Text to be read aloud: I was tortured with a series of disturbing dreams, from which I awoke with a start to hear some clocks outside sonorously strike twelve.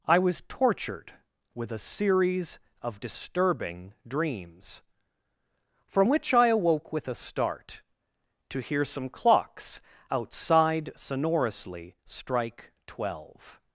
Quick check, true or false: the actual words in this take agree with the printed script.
true